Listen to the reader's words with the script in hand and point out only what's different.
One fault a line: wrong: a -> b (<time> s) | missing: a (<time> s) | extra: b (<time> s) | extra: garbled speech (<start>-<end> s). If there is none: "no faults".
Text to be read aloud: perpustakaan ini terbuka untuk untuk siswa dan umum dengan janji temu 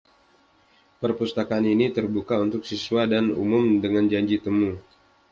missing: untuk (2.6 s)